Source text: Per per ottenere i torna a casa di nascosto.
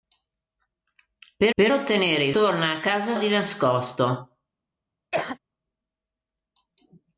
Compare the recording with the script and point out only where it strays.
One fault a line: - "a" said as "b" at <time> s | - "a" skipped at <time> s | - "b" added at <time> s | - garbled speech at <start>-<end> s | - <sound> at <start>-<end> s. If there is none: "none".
- cough at 5.1-5.4 s